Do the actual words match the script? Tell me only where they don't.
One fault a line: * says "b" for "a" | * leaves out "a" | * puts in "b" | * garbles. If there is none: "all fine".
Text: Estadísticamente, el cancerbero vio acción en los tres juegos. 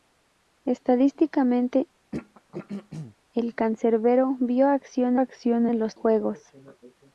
* puts in "acción"
* leaves out "tres"